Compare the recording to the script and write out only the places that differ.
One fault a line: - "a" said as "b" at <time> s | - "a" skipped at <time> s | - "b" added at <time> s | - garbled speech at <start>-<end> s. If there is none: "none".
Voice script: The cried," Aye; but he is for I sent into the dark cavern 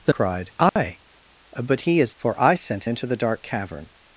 none